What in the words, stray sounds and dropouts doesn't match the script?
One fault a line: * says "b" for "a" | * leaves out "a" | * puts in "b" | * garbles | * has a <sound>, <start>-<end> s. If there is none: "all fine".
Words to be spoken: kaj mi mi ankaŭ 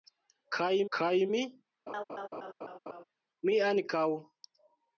* puts in "kaj"
* has a laugh, 1.9-3.0 s